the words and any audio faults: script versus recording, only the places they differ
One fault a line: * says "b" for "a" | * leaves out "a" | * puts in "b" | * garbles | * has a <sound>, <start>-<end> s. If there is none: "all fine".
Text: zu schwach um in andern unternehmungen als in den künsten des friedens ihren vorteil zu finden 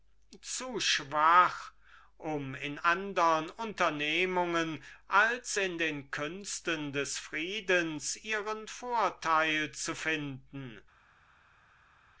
all fine